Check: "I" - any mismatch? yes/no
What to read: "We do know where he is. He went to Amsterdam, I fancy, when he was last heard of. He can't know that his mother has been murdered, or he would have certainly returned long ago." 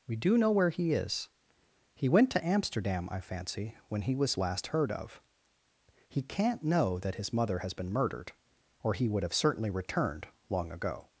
no